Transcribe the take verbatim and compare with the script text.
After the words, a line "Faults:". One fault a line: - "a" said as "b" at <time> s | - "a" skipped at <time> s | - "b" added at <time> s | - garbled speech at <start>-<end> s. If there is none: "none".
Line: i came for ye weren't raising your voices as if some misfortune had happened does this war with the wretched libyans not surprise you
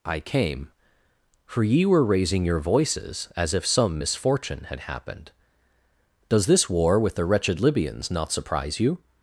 i came for ye were raising your voices as if some misfortune had happened does this war with the wretched libyans not surprise you
Faults:
- "weren't" said as "were" at 1.9 s